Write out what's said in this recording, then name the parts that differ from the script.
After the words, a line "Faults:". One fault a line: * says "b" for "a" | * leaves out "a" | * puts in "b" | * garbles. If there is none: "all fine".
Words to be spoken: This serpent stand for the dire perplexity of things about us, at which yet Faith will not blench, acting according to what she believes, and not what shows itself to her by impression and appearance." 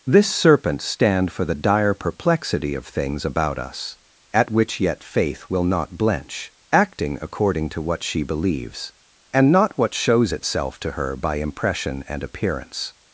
This serpent stand for the dire perplexity of things about us, at which yet Faith will not blench, acting according to what she believes, and not what shows itself to her by impression and appearance."
Faults:
all fine